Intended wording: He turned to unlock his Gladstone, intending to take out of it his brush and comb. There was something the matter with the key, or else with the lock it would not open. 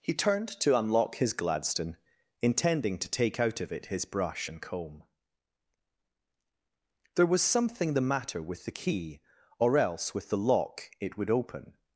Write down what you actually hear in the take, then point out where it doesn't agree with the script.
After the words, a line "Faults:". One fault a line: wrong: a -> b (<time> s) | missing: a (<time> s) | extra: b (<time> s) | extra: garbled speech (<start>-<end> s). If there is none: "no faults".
He turned to unlock his Gladstone, intending to take out of it his brush and comb. There was something the matter with the key, or else with the lock it would open.
Faults:
missing: not (11.3 s)